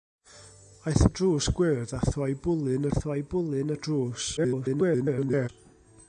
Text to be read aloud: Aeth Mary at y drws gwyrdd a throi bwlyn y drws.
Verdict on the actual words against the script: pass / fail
fail